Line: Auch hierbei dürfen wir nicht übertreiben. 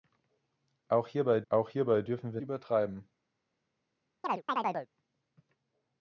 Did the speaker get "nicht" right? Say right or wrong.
wrong